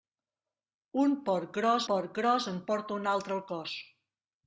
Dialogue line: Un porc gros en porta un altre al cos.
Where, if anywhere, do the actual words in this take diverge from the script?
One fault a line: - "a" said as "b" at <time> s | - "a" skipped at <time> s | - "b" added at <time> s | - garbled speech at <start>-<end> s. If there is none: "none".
- "porc gros" added at 1.9 s